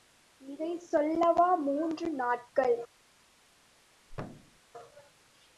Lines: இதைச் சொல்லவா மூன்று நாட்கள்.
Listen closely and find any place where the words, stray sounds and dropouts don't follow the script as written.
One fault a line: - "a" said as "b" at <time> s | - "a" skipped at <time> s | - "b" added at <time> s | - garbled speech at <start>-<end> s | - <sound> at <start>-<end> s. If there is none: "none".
- thud at 4.1-4.6 s